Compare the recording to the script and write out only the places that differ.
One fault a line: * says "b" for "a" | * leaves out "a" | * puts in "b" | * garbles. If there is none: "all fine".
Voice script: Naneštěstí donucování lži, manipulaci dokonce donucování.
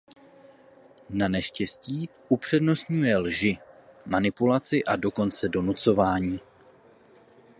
* says "upřednostňuje" for "donucování"
* puts in "a"